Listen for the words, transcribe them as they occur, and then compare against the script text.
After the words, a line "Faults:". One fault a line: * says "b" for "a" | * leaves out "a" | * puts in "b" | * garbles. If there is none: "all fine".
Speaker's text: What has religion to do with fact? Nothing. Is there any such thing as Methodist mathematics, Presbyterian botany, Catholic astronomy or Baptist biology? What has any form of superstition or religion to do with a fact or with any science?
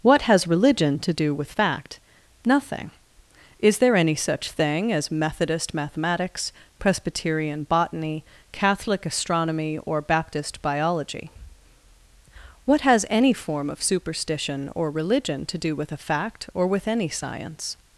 What has religion to do with fact? Nothing. Is there any such thing as Methodist mathematics, Presbyterian botany, Catholic astronomy or Baptist biology? What has any form of superstition or religion to do with a fact or with any science?
Faults:
all fine